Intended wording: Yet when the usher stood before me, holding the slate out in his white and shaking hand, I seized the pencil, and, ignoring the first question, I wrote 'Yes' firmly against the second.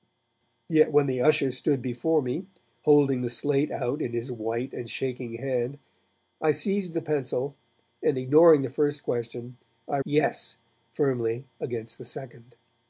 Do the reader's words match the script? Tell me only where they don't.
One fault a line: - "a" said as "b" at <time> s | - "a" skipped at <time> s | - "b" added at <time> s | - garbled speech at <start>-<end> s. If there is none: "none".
- "wrote" skipped at 10.0 s